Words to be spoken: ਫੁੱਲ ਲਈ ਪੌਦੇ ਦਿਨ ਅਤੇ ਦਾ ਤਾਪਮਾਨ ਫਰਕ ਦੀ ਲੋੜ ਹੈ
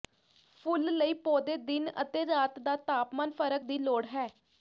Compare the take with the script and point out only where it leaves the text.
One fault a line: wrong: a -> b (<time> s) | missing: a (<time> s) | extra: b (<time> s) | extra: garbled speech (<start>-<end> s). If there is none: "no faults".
extra: ਰਾਤ (2.2 s)